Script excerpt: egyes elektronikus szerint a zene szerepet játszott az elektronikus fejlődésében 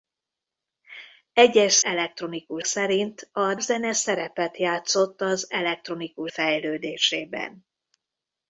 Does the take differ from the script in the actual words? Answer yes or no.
no